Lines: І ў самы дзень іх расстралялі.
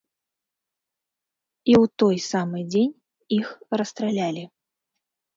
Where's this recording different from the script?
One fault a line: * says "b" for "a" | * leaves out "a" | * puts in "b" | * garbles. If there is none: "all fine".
* puts in "той"